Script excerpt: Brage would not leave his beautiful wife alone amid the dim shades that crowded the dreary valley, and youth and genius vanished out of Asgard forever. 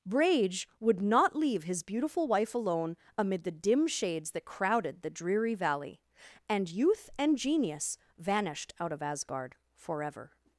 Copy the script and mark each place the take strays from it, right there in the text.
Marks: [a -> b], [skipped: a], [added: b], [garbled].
Brage would not leave his beautiful wife alone amid the dim shades that crowded the dreary valley, and youth and genius vanished out of Asgard forever.